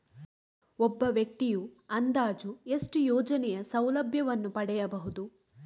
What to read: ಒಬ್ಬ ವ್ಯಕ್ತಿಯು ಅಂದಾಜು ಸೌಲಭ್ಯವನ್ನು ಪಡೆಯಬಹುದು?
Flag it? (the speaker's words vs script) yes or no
yes